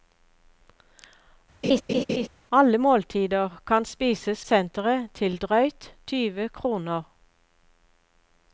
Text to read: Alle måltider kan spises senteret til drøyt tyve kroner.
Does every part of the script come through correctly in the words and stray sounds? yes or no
no